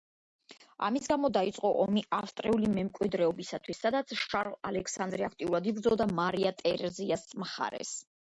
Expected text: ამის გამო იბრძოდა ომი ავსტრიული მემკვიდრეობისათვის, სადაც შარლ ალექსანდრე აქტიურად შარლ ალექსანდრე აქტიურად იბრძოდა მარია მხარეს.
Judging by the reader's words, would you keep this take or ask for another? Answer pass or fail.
fail